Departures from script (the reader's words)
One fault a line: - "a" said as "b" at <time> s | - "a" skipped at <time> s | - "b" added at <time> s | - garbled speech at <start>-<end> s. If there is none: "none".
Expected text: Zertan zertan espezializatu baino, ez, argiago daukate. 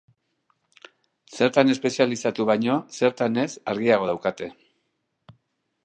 - "zertan" skipped at 1.7 s
- "zertan" added at 3.0 s